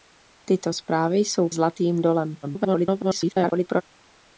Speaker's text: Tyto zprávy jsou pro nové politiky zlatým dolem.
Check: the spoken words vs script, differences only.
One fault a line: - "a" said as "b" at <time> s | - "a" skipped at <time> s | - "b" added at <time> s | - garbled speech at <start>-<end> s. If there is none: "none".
- "pro nové politiky" skipped at 1.5 s
- garbled speech at 2.4-3.8 s